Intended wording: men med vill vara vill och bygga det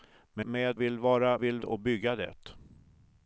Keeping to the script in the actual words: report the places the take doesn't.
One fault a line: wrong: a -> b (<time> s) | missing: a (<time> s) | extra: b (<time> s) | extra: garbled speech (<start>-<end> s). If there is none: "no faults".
no faults